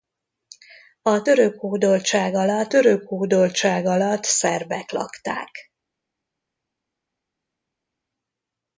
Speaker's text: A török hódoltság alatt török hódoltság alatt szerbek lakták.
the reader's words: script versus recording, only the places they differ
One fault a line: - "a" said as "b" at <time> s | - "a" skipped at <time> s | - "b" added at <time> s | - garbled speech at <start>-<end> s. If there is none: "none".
none